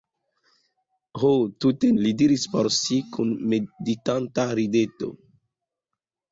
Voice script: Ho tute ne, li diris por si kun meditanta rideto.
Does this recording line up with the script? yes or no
no